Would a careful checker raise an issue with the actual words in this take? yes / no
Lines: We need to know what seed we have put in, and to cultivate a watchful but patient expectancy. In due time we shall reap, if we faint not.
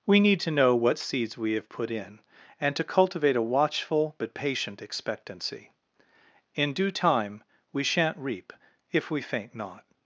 yes